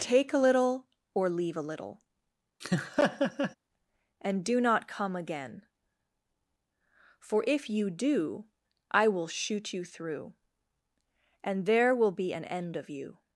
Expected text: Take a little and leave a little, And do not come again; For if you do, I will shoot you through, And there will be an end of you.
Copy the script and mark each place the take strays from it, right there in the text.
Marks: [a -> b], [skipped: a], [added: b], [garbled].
Take a little [and -> or] leave a little, And do not come again; For if you do, I will shoot you through, And there will be an end of you.